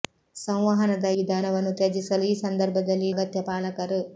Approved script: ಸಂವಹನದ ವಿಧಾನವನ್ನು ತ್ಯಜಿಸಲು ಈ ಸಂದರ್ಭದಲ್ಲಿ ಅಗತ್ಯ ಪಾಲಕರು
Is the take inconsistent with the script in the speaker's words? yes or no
no